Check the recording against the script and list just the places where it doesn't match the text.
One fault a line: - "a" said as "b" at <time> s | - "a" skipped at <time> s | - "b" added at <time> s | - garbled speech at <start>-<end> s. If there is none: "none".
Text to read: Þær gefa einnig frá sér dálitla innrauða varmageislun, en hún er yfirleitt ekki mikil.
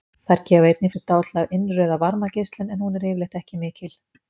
- "frá" skipped at 0.9 s